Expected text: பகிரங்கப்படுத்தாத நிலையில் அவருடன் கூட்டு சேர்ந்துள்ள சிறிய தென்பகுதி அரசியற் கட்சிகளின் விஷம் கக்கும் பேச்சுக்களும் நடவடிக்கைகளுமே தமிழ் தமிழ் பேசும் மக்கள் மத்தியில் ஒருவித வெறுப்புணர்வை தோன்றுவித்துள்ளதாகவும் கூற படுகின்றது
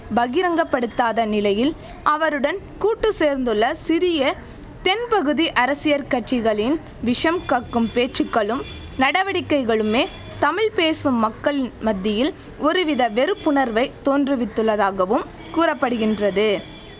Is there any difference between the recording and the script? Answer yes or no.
yes